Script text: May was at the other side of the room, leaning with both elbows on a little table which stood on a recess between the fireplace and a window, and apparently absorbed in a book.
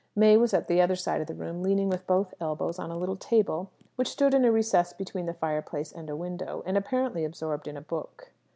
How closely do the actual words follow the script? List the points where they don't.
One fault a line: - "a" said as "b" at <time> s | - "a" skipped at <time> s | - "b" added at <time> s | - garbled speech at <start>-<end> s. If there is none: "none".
- "on" said as "in" at 4.3 s